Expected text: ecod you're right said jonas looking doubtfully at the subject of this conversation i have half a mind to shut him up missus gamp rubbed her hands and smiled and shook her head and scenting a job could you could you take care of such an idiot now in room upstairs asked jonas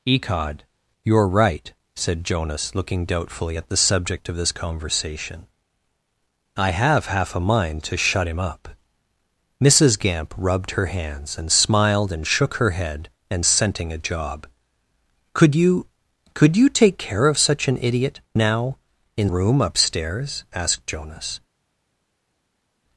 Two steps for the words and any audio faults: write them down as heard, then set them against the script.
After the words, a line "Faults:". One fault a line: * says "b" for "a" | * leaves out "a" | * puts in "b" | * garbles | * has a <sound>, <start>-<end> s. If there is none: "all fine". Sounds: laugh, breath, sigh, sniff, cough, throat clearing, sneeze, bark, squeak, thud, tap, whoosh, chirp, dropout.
ecod you're right said jonas looking doubtfully at the subject of this conversation i have half a mind to shut him up missus gamp rubbed her hands and smiled and shook her head and scenting a job could you could you take care of such an idiot now in room upstairs asked jonas
Faults:
all fine